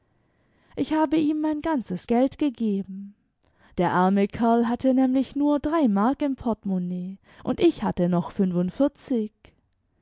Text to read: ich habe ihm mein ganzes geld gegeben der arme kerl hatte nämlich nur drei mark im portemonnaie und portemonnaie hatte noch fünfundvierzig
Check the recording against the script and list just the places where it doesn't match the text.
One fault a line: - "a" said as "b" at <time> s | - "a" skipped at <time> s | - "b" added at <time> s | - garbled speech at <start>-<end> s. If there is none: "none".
- "portemonnaie" said as "ich" at 7.6 s